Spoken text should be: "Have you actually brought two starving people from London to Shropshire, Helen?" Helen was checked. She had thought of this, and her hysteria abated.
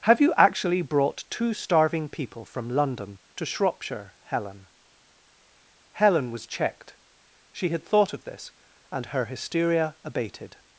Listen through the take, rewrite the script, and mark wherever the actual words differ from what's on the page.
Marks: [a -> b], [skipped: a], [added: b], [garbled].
"Have you actually brought two starving people from London to Shropshire, Helen?" Helen was checked. She had thought of this, and her hysteria abated.